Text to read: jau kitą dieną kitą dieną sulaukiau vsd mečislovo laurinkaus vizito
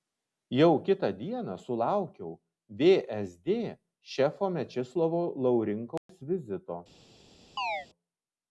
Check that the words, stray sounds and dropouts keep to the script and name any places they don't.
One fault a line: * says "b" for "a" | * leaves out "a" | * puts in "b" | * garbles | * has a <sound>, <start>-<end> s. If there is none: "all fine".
* leaves out "kitą dieną"
* puts in "šefo"
* has a dropout, 6.0-6.1 s
* has a chirp, 7.6-7.9 s